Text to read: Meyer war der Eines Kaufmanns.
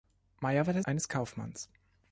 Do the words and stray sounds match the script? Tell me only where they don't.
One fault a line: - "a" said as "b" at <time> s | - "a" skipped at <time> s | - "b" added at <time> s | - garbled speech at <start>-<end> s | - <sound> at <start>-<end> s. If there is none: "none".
none